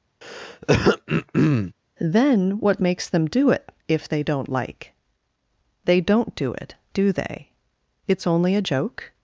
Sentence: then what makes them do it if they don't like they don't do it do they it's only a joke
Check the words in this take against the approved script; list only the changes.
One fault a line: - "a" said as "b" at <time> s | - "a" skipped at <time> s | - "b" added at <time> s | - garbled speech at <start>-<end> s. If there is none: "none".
none